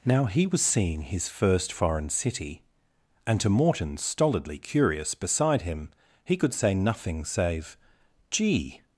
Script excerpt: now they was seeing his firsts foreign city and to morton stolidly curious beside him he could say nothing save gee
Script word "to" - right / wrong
right